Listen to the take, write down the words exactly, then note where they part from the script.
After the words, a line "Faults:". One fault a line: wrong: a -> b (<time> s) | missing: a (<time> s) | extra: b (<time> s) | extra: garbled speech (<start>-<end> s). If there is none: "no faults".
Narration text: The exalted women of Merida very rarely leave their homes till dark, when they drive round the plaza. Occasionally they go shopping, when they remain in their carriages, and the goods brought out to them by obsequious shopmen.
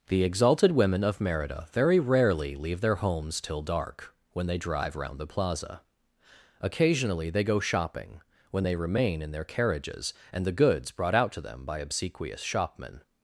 The exalted women of Merida very rarely leave their homes till dark, when they drive round the plaza. Occasionally they go shopping, when they remain in their carriages, and the goods brought out to them by obsequious shopmen.
Faults:
no faults